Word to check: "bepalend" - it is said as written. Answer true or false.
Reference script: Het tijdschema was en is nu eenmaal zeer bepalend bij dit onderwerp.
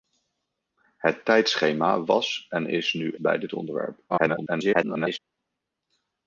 false